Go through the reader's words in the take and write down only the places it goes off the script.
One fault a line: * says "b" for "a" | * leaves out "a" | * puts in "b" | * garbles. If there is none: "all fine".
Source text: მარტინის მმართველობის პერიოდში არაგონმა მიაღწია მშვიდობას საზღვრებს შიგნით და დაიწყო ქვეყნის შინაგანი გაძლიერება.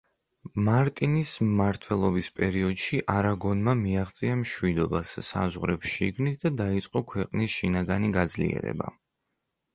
all fine